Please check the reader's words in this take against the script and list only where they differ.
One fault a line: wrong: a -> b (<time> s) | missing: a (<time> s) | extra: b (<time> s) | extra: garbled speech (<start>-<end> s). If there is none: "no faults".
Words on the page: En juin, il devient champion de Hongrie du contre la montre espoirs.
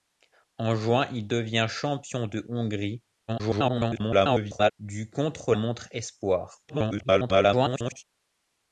extra: garbled speech (3.3-4.7 s)
missing: la (5.5 s)
extra: garbled speech (6.7-8.0 s)